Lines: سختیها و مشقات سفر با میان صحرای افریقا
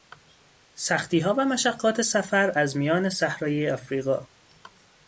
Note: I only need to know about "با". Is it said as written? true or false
false